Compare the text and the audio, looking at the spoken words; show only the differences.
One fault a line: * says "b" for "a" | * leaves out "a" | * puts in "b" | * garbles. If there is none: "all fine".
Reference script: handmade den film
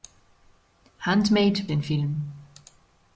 all fine